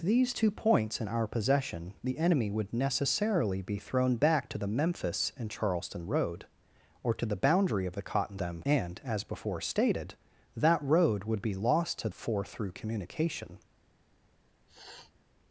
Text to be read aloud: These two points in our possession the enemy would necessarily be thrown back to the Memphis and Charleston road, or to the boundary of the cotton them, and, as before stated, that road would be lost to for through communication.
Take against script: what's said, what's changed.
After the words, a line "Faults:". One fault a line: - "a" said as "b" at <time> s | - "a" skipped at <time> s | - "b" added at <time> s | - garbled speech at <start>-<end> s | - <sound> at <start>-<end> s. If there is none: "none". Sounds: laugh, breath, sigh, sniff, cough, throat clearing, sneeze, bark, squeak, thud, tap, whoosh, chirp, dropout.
These two points in our possession the enemy would necessarily be thrown back to the Memphis and Charleston road, or to the boundary of the cotton them, and, as before stated, that road would be lost to for through communication.
Faults:
- sniff at 14.7-15.1 s